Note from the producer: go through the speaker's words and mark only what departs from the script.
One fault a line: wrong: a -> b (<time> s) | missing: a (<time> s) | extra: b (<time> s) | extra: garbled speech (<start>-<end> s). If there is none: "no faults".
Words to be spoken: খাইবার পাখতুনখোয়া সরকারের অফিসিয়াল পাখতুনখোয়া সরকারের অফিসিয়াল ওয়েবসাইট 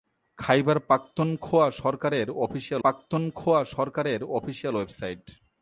no faults